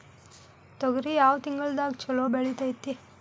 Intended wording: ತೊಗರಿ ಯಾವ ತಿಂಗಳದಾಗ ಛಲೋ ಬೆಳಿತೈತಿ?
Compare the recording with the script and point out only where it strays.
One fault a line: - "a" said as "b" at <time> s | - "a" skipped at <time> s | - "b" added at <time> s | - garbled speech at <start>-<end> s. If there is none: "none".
none